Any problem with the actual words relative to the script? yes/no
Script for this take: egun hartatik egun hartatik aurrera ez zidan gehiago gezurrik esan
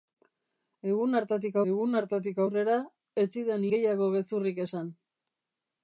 no